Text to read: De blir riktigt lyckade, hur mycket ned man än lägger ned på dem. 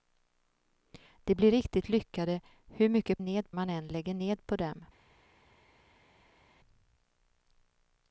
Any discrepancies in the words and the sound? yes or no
no